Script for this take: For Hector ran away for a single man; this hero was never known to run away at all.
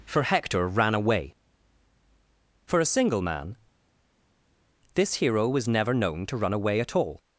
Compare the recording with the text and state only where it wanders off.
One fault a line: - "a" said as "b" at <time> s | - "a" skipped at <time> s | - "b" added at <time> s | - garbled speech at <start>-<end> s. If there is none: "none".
none